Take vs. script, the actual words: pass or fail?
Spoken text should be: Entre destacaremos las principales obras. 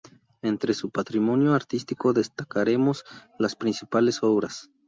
fail